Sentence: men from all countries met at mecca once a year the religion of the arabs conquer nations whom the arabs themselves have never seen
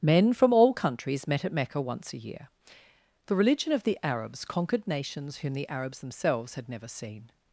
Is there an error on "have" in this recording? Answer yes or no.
yes